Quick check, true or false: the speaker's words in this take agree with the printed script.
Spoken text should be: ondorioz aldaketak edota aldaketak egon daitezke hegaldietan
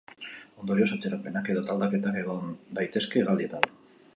false